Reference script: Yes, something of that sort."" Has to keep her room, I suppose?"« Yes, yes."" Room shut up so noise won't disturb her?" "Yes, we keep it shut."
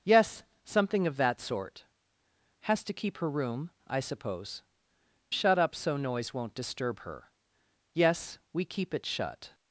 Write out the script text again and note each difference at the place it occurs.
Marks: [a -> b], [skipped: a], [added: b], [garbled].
Yes, something of that sort."" Has to keep her room, I suppose?"« [skipped: Yes, yes."" Room] shut up so noise won't disturb her?" "Yes, we keep it shut."